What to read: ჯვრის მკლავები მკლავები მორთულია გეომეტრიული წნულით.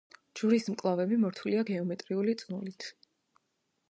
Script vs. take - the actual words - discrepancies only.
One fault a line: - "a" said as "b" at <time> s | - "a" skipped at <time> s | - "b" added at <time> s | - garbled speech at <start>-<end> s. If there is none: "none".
- "მკლავები" skipped at 1.2 s